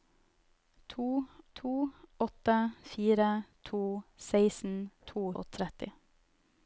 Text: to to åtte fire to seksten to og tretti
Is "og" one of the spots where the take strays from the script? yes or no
no